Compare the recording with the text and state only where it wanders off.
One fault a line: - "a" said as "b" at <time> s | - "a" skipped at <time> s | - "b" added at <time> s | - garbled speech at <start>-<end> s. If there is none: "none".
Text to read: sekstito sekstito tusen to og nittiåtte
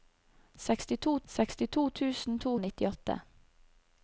none